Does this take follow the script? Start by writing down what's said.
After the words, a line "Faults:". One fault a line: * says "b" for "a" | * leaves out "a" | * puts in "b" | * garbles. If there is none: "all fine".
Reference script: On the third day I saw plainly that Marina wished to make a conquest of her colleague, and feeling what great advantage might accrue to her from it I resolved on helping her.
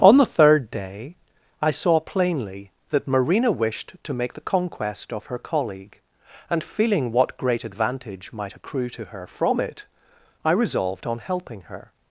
On the third day I saw plainly that Marina wished to make the conquest of her colleague, and feeling what great advantage might accrue to her from it I resolved on helping her.
Faults:
* says "the" for "a"